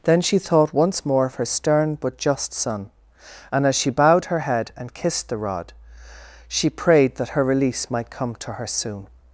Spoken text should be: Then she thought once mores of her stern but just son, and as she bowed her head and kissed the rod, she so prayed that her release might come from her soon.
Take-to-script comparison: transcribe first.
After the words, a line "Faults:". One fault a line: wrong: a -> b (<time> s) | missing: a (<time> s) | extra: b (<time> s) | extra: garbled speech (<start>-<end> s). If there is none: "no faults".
Then she thought once more of her stern but just son, and as she bowed her head and kissed the rod, she prayed that her release might come to her soon.
Faults:
wrong: mores -> more (1.1 s)
missing: so (6.7 s)
wrong: from -> to (8.4 s)